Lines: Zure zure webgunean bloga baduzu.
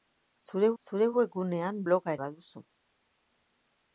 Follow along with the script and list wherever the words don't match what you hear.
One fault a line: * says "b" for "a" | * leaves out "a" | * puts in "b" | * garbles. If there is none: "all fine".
all fine